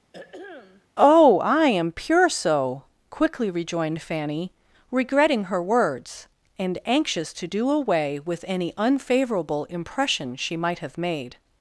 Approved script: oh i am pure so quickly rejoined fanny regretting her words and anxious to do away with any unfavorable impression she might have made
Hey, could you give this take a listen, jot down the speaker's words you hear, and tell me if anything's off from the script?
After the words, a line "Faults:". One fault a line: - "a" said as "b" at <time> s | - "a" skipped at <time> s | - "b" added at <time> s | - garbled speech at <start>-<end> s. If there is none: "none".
oh i am pure so quickly rejoined fanny regretting her words and anxious to do away with any unfavorable impression she might have made
Faults:
none